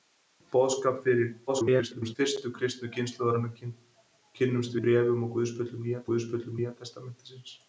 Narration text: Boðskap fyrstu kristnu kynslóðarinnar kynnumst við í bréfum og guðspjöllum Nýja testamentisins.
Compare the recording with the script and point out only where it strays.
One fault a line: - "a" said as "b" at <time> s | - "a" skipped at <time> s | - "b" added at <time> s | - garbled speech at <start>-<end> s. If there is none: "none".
- garbled speech at 1.5-2.2 s
- "við" skipped at 4.8 s
- "guðspjöllum Nýja" added at 6.1 s